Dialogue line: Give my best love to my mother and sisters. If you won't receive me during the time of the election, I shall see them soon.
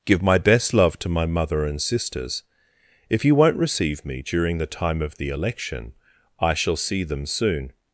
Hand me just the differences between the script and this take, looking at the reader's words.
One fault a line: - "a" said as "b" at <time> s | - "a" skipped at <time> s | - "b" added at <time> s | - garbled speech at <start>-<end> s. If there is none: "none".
none